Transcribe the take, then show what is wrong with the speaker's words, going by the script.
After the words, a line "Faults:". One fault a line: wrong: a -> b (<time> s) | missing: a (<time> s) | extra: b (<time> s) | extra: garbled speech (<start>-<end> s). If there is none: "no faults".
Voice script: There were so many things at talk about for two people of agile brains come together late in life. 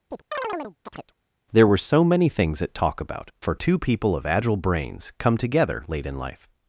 There were so many things at talk about for two people of agile brains come together late in life.
Faults:
no faults